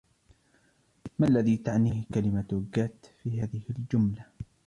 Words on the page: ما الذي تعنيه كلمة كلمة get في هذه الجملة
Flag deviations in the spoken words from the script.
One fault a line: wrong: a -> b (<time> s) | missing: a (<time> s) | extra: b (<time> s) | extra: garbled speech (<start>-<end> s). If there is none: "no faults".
missing: كلمة (2.6 s)